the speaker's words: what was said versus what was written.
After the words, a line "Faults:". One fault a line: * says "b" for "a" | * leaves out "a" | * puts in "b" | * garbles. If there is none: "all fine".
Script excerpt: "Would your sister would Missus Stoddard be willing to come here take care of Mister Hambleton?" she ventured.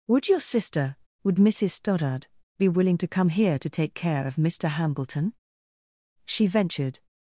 "Would your sister would Missus Stoddard be willing to come here to take care of Mister Hambleton?" she ventured.
Faults:
* puts in "to"